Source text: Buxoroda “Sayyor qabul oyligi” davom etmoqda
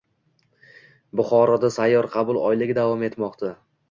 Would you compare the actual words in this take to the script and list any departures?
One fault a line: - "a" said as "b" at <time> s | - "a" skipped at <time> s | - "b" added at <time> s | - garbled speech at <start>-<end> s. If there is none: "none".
none